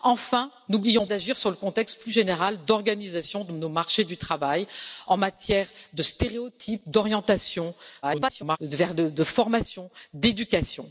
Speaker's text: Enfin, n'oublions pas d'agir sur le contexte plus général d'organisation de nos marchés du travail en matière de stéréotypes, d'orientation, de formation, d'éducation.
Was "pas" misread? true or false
true